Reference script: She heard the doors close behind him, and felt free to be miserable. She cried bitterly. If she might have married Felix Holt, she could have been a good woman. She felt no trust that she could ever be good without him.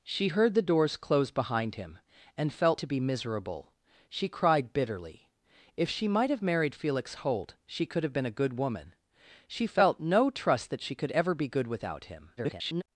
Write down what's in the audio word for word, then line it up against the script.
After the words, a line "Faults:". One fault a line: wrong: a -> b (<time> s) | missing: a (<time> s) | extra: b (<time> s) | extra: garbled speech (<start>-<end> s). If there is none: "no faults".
She heard the doors close behind him, and felt to be miserable. She cried bitterly. If she might have married Felix Holt, she could have been a good woman. She felt no trust that she could ever be good without him. [garbled]
Faults:
missing: free (2.8 s)
extra: garbled speech (12.4-12.8 s)